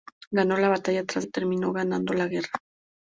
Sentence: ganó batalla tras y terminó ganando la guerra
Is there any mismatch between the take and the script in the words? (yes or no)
no